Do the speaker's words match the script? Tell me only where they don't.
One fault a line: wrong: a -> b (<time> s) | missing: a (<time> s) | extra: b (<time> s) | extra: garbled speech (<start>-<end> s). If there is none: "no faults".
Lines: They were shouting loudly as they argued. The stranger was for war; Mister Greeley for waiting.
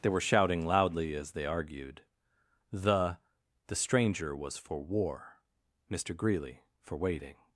extra: The (3.7 s)